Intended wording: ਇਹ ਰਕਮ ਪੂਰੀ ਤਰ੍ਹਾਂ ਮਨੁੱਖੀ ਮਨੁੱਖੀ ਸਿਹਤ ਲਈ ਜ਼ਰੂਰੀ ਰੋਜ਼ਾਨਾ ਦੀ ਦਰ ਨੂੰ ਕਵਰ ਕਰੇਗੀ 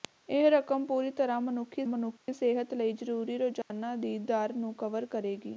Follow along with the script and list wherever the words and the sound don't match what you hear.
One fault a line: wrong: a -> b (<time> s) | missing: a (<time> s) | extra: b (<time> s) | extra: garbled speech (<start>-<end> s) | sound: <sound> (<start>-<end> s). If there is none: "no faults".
sound: dropout (2.2-2.3 s)
sound: dropout (3.6-3.7 s)